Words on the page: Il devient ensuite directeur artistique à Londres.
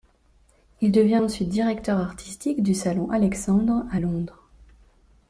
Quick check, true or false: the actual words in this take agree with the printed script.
false